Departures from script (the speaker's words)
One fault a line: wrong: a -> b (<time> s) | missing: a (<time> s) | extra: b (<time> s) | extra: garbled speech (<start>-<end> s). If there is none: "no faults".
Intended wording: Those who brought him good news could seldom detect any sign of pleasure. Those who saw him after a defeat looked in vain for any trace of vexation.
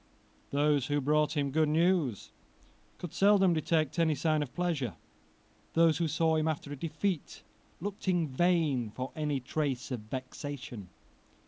no faults